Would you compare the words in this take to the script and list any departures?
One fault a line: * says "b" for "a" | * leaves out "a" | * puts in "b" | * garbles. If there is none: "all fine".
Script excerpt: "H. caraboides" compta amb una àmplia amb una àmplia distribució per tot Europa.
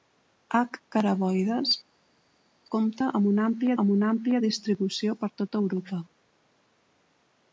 all fine